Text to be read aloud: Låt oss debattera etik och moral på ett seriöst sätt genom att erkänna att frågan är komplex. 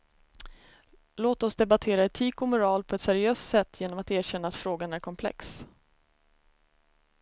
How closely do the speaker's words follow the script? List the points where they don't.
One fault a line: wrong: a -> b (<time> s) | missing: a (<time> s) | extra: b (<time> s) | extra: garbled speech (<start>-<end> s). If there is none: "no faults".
no faults